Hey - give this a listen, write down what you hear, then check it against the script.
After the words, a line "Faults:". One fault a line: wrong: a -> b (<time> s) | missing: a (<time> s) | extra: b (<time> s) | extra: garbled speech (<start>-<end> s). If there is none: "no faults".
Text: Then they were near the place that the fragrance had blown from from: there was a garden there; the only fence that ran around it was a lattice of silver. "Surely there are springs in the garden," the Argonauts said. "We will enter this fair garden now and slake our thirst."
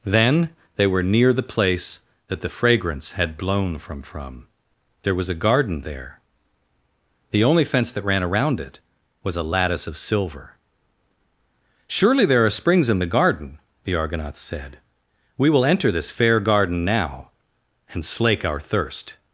Then they were near the place that the fragrance had blown from from: there was a garden there; the only fence that ran around it was a lattice of silver. "Surely there are springs in the garden," the Argonauts said. "We will enter this fair garden now and slake our thirst."
Faults:
no faults